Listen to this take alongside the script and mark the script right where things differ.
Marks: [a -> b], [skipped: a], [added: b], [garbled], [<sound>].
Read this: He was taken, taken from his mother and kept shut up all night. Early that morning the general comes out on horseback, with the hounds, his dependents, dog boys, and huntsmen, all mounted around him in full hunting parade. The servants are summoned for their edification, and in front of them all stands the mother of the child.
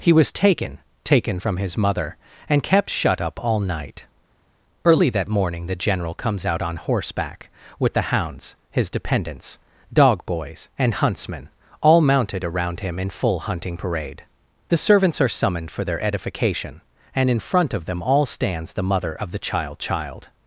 He was taken, taken from his mother and kept shut up all night. Early that morning the general comes out on horseback, with the hounds, his dependents, dog boys, and huntsmen, all mounted around him in full hunting parade. The servants are summoned for their edification, and in front of them all stands the mother of the child. [added: child]